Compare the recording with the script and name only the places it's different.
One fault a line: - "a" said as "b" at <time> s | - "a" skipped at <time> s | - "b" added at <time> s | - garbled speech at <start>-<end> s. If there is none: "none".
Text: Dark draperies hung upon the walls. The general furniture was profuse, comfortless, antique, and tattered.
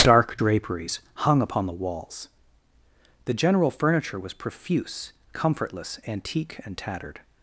none